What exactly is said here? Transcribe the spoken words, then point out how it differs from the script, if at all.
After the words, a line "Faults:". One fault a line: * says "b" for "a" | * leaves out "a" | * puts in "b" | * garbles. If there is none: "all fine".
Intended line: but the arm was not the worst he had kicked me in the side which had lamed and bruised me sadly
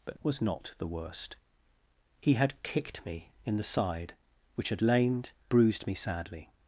but was not the worst he had kicked me in the side which had lamed bruised me sadly
Faults:
* leaves out "the arm"
* leaves out "and"